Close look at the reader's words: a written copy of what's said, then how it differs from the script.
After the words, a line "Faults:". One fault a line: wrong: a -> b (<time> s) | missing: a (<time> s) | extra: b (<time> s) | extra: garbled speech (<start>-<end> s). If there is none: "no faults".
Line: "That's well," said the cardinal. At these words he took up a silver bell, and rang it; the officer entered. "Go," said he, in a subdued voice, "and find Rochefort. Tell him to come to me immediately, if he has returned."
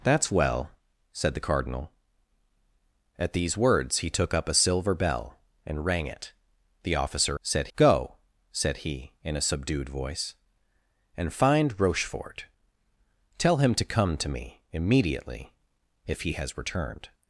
"That's well," said the cardinal. At these words he took up a silver bell, and rang it; the officer said. "Go," said he, in a subdued voice, "and find Rochefort. Tell him to come to me immediately, if he has returned."
Faults:
wrong: entered -> said (7.4 s)